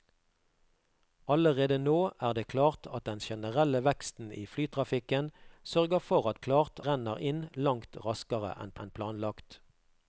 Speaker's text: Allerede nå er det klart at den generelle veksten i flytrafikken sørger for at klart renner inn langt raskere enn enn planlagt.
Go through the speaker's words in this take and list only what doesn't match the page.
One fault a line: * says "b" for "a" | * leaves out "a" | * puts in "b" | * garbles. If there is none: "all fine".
all fine